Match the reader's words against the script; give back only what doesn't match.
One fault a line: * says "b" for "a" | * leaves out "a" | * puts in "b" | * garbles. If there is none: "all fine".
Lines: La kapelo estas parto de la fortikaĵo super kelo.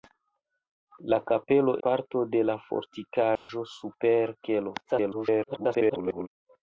* leaves out "estas"
* garbles